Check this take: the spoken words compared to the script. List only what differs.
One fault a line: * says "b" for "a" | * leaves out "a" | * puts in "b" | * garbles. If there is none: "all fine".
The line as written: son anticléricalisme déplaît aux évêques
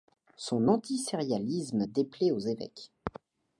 all fine